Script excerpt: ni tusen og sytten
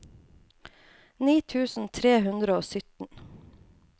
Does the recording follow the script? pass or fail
fail